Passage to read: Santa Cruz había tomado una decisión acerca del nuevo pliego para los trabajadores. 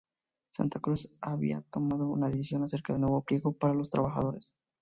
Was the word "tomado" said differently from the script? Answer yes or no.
no